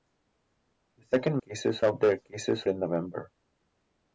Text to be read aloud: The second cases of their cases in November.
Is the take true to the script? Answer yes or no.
yes